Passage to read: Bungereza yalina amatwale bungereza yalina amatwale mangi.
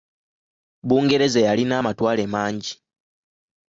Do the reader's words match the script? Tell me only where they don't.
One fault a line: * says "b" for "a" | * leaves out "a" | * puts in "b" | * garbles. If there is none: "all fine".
* leaves out "bungereza yalina amatwale"